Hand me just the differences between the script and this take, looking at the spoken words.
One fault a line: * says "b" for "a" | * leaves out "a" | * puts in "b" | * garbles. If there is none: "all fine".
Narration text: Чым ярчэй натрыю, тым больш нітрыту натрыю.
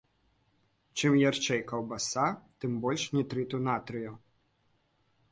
* says "каўбаса" for "натрыю"